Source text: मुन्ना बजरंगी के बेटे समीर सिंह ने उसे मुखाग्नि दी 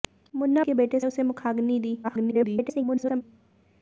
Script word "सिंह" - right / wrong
wrong